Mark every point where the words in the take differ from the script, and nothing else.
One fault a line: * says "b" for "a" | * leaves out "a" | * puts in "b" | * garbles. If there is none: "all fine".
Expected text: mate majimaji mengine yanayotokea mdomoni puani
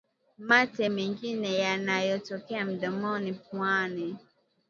* leaves out "majimaji"